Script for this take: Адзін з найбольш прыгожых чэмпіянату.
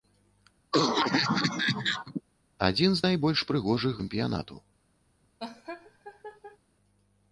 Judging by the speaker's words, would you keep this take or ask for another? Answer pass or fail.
pass